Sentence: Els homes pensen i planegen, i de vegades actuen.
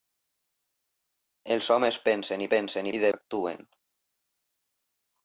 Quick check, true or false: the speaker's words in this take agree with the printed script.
false